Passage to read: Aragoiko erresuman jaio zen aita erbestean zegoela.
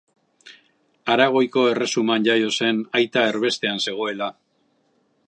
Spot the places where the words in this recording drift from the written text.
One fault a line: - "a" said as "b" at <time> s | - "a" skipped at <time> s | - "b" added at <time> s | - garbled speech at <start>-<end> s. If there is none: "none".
none